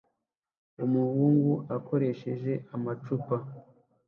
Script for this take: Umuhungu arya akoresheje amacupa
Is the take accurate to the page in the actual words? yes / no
no